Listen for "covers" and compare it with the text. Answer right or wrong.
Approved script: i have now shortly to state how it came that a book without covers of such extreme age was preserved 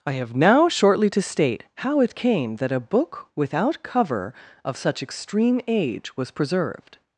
wrong